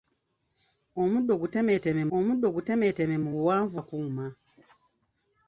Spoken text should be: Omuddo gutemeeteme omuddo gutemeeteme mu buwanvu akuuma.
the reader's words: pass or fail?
pass